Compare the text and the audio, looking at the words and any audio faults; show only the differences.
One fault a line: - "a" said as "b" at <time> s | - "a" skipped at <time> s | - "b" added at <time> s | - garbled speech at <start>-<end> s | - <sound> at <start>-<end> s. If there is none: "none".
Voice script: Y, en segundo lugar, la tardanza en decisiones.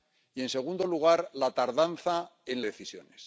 none